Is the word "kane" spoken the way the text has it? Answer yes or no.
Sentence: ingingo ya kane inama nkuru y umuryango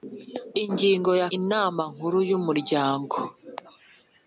no